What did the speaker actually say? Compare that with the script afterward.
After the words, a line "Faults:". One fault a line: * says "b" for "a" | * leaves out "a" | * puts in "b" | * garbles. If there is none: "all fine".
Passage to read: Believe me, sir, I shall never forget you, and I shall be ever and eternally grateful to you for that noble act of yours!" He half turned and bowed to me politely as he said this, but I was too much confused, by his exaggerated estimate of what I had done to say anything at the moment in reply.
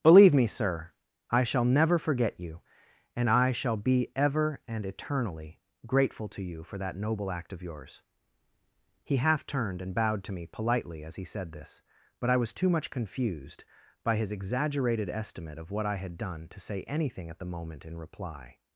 Believe me, sir, I shall never forget you, and I shall be ever and eternally grateful to you for that noble act of yours!" He half turned and bowed to me politely as he said this, but I was too much confused, by his exaggerated estimate of what I had done to say anything at the moment in reply.
Faults:
all fine